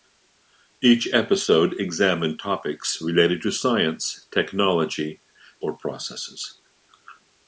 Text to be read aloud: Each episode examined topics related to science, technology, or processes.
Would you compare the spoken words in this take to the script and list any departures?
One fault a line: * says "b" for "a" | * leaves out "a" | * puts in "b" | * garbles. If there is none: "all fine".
all fine